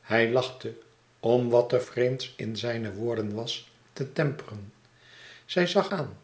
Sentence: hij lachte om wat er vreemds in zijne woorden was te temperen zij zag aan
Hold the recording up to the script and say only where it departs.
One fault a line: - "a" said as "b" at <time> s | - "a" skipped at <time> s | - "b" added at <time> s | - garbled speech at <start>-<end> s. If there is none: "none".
none